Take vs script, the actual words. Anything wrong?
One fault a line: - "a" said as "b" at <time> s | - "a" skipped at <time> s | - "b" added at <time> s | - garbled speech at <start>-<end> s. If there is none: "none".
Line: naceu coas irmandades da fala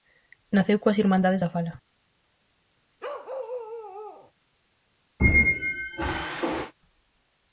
none